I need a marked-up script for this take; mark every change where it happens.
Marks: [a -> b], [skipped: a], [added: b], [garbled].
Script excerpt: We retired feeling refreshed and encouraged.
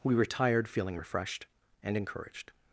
We retired feeling refreshed and encouraged.